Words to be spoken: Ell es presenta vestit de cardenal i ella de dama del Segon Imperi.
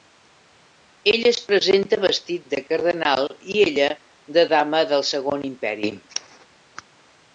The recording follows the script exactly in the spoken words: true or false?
true